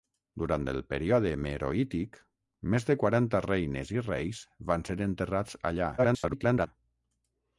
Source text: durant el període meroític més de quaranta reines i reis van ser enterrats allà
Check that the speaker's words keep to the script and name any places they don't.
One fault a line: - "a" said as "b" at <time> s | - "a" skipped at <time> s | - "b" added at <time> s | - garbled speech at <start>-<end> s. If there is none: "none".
- garbled speech at 6.0-6.7 s